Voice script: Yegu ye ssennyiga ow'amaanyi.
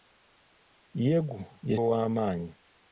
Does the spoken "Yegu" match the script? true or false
true